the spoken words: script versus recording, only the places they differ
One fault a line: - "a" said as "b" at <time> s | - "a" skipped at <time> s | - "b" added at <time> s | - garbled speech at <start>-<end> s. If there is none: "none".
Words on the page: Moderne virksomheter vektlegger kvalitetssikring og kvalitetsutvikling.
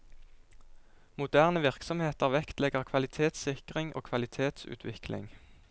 none